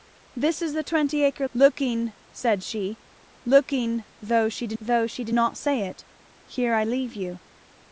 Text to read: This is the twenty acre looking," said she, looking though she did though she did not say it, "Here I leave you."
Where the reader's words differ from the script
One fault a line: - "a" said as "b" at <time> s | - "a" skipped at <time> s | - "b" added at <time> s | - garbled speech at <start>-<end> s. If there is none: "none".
none